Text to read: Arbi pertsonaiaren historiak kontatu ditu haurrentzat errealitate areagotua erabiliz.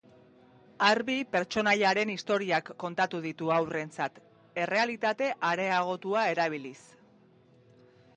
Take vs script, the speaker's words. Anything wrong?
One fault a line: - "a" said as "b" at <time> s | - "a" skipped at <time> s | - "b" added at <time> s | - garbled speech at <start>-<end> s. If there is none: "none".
none